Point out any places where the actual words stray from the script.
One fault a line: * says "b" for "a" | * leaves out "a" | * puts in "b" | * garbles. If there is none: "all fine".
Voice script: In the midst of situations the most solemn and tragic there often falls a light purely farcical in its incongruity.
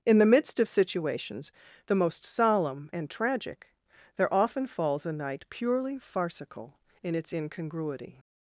* says "night" for "light"